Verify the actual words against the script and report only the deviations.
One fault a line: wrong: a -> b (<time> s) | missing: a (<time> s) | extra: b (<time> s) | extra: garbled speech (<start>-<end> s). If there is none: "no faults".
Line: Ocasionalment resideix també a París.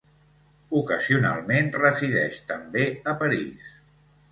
no faults